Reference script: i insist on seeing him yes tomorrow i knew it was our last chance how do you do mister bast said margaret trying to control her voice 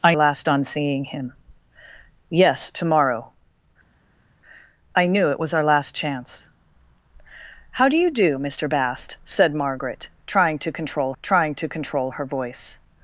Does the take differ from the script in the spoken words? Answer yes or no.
yes